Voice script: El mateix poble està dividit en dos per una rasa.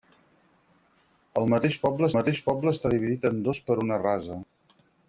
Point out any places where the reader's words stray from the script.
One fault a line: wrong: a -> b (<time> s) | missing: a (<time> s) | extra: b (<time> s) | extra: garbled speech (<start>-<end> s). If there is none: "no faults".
extra: mateix poble (2.2 s)